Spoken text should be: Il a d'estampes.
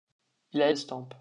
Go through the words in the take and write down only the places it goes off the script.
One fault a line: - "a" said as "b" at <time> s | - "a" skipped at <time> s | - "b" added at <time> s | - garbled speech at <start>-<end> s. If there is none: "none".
none